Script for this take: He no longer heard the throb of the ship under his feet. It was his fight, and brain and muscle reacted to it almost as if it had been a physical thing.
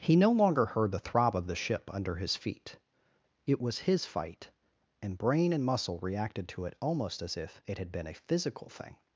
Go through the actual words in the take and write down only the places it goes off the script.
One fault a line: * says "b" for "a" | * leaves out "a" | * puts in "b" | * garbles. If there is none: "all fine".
all fine